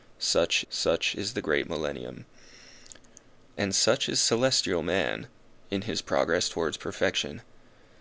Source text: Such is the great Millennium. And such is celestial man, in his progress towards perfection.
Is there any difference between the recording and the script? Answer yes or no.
yes